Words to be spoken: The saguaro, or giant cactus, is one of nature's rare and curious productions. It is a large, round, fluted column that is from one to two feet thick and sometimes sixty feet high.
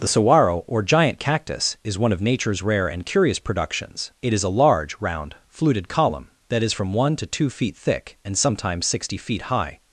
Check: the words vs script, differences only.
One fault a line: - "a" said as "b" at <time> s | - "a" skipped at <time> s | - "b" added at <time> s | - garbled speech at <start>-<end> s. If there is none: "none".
none